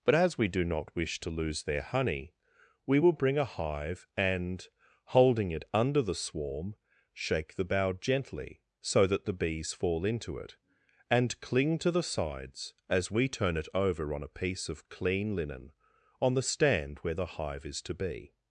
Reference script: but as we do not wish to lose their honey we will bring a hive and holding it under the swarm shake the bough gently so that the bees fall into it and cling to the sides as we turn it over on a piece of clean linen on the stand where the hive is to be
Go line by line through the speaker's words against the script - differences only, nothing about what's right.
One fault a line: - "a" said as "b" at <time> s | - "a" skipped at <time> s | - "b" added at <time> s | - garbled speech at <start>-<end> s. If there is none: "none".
none